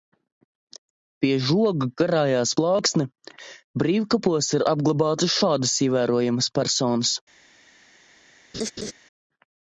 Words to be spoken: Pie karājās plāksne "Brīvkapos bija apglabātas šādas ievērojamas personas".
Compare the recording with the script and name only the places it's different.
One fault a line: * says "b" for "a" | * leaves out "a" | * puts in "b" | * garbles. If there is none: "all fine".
* puts in "žoga"
* says "ir" for "bija"